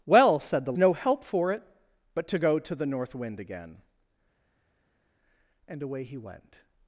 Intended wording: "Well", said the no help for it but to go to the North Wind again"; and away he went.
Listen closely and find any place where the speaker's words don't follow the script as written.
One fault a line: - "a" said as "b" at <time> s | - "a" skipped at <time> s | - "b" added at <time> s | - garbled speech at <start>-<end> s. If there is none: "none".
none